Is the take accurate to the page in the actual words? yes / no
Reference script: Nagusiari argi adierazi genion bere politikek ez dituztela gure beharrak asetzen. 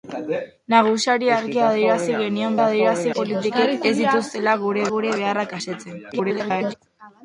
no